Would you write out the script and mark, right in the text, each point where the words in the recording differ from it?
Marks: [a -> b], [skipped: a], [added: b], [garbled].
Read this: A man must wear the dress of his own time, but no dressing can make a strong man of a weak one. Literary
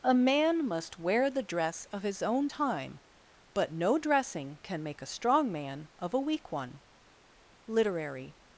A man must wear the dress of his own time, but no dressing can make a strong man of a weak one. Literary